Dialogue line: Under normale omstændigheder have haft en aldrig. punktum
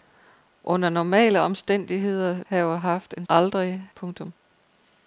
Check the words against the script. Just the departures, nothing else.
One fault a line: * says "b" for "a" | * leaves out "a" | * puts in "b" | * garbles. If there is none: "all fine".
all fine